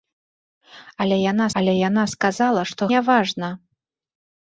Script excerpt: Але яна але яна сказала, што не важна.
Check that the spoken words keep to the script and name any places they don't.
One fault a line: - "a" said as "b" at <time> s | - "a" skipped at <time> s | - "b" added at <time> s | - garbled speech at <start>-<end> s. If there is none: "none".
none